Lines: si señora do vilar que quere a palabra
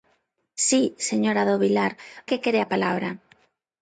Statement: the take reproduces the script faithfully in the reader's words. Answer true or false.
true